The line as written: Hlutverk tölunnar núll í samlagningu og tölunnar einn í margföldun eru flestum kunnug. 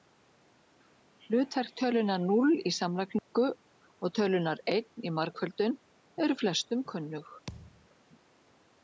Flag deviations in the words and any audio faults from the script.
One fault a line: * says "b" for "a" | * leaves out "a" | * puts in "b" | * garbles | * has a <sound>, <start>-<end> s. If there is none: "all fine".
* has a dropout, 3.2-3.3 s
* has a thud, 7.5-7.9 s